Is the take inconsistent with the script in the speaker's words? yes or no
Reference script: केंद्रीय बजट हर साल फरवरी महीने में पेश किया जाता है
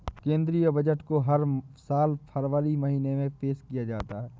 yes